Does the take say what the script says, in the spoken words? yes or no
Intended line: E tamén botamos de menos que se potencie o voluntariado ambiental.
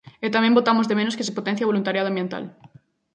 yes